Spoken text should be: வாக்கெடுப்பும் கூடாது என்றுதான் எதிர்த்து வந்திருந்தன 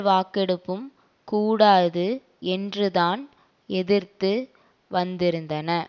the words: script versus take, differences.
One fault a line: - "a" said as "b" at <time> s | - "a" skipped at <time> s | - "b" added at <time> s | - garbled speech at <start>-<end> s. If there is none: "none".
none